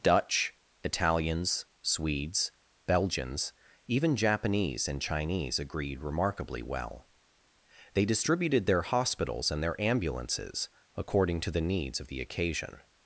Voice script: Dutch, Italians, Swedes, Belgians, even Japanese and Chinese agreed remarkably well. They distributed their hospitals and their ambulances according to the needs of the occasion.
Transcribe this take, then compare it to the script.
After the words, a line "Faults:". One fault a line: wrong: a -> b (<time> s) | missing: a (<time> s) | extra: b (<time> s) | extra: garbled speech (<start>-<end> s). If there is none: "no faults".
Dutch, Italians, Swedes, Belgians, even Japanese and Chinese agreed remarkably well. They distributed their hospitals and their ambulances according to the needs of the occasion.
Faults:
no faults